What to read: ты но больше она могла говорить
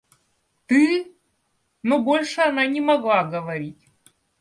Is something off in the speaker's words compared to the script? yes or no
yes